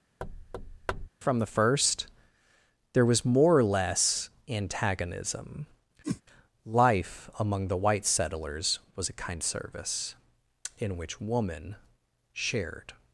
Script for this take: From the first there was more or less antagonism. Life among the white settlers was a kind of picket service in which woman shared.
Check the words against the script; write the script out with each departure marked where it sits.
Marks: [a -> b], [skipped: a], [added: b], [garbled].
From the first there was more or less antagonism. Life among the white settlers was a kind [skipped: of picket] service in which woman shared.